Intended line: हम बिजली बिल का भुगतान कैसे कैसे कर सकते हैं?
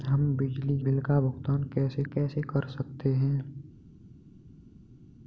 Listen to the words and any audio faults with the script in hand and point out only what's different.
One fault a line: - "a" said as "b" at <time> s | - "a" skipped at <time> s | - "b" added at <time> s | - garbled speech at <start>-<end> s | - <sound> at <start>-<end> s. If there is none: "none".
none